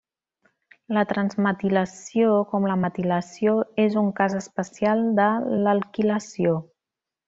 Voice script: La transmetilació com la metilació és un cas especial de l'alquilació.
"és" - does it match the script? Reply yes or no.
yes